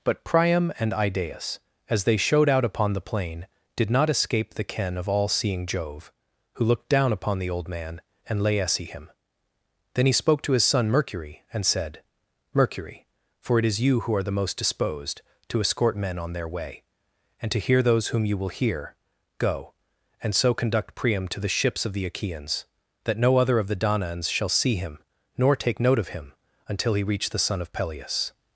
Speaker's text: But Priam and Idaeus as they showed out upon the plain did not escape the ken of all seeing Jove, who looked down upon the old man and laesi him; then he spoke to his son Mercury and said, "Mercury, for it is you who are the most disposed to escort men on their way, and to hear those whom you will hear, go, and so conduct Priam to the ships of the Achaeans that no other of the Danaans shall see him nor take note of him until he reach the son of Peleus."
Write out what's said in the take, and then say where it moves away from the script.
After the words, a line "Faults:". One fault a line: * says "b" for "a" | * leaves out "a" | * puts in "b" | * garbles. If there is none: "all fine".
But Priam and Idaeus as they showed out upon the plain did not escape the ken of all seeing Jove, who looked down upon the old man and laesi him; then he spoke to his son Mercury and said, "Mercury, for it is you who are the most disposed to escort men on their way, and to hear those whom you will hear, go, and so conduct Priam to the ships of the Achaeans that no other of the Danaans shall see him nor take note of him until he reach the son of Peleus."
Faults:
all fine